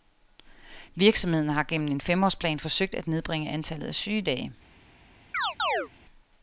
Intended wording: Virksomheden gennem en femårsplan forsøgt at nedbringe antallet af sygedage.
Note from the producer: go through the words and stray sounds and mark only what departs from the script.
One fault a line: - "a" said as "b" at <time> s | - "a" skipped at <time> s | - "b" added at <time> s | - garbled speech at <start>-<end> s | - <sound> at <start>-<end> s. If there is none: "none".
- "har" added at 1.5 s
- chirp at 5.3-5.9 s